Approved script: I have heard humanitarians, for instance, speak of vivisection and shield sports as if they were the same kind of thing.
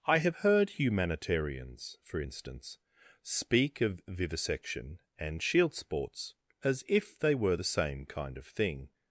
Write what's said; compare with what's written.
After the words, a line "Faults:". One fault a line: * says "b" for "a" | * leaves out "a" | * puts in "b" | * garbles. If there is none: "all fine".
I have heard humanitarians, for instance, speak of vivisection and shield sports as if they were the same kind of thing.
Faults:
all fine